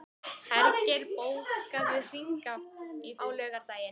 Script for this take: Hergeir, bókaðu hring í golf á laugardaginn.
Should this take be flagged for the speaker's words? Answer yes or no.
yes